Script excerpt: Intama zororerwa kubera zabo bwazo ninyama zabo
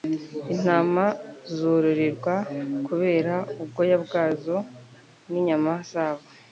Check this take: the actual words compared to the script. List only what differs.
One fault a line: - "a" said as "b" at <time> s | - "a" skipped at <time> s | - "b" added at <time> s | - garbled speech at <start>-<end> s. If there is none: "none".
- "zabo" said as "ubwoya" at 3.6 s